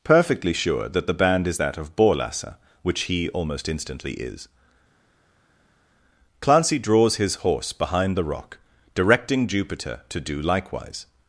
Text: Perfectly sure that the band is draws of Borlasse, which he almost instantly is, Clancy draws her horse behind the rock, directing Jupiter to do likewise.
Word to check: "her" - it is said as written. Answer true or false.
false